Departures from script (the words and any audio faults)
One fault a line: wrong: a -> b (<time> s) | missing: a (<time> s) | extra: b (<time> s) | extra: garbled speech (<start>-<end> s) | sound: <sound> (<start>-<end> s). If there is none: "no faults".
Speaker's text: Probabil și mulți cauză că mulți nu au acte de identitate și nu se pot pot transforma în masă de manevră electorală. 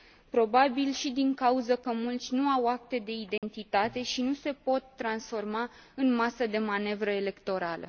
wrong: mulți -> din (1.1 s)
sound: dropout (3.4-3.4 s)
missing: pot (4.8 s)